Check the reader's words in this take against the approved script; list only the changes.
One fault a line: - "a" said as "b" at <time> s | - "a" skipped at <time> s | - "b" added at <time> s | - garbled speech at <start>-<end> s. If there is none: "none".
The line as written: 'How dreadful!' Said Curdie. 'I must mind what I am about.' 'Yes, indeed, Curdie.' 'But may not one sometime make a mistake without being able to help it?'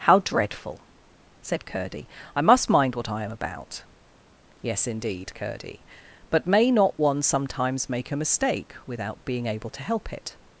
- "sometime" said as "sometimes" at 7.2 s